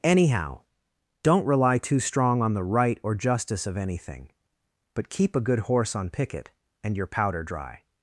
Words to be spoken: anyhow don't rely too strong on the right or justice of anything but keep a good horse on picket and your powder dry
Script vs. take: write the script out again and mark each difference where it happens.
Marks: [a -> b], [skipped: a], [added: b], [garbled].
anyhow don't rely too strong on the right or justice of anything but keep a good horse on picket and your powder dry